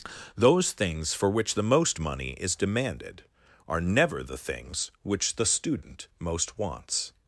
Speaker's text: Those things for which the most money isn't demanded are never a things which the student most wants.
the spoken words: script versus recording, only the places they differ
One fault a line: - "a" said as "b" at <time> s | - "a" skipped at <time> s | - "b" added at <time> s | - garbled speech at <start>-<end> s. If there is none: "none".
- "isn't" said as "is" at 2.3 s
- "a" said as "the" at 4.2 s